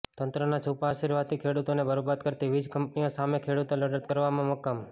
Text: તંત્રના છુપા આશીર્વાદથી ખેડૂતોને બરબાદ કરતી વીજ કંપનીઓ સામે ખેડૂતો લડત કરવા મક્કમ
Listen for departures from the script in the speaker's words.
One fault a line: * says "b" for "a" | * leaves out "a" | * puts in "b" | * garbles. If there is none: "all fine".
all fine